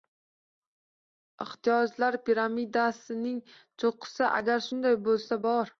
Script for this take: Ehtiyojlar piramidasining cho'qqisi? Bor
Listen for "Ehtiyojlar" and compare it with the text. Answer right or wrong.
right